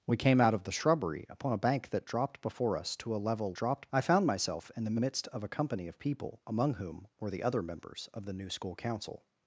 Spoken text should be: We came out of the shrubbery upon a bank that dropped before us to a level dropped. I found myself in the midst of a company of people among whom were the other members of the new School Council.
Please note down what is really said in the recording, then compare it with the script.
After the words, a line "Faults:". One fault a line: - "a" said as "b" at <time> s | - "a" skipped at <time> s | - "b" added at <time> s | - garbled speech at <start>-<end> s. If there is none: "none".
We came out of the shrubbery upon a bank that dropped before us to a level dropped. I found myself in the midst of a company of people among whom were the other members of the new School Council.
Faults:
none